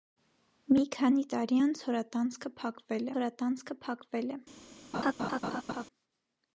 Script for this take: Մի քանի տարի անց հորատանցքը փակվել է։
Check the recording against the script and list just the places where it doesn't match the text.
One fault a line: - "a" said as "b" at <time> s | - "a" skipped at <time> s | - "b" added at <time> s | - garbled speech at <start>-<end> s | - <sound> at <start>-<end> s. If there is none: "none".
- "հորատանցքը փակվել" added at 3.2 s
- laugh at 4.9-5.8 s